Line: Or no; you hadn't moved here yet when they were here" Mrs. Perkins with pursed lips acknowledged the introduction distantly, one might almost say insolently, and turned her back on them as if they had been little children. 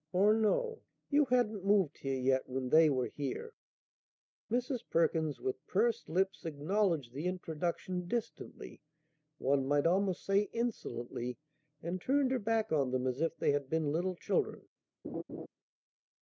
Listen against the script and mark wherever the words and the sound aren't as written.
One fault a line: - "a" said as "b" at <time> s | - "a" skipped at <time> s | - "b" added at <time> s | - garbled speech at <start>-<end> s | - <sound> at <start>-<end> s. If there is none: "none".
- laugh at 15.0-15.5 s